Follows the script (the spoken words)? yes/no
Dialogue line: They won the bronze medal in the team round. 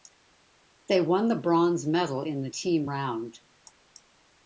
yes